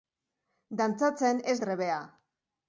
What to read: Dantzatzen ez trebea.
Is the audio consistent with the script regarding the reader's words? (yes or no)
yes